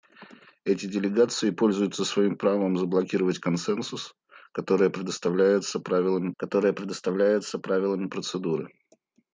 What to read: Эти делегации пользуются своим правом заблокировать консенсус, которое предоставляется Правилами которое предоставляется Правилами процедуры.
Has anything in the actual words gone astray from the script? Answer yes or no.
no